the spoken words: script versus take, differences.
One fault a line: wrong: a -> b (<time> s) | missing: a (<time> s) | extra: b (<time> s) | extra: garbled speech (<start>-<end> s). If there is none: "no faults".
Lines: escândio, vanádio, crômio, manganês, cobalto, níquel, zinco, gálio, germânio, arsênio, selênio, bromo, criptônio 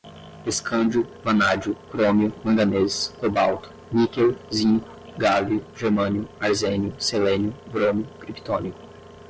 no faults